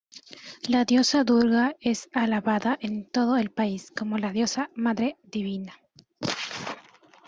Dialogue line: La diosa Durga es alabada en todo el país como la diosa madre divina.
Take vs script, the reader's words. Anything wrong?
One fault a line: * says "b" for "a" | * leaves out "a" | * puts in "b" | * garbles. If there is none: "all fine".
all fine